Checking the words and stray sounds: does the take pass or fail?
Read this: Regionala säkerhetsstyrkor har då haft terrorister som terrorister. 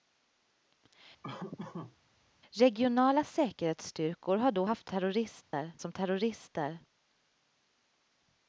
fail